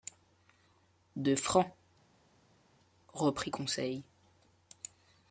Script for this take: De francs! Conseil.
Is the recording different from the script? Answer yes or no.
yes